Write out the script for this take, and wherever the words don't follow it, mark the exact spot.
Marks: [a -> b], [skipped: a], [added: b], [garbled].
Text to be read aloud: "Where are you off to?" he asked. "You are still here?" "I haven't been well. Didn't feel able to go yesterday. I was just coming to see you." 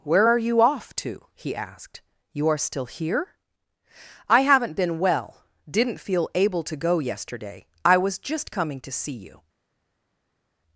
"Where are you off to?" he asked. "You are still here?" "I haven't been well. Didn't feel able to go yesterday. I was just coming to see you."